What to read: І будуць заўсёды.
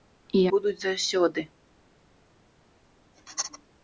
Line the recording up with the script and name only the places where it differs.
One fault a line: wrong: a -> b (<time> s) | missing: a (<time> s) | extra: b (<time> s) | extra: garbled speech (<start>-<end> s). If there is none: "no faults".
no faults